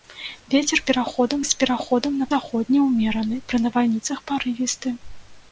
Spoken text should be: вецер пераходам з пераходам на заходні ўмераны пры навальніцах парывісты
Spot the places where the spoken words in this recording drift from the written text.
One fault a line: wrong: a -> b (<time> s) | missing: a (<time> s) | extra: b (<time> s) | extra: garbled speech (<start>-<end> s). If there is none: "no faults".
no faults